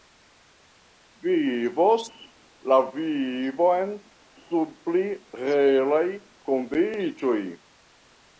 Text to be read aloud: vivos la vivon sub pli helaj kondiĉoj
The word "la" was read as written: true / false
true